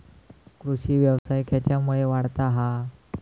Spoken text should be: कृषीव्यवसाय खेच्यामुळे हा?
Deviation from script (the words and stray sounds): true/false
true